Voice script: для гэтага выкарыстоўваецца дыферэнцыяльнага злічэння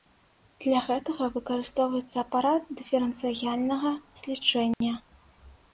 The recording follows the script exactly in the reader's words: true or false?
false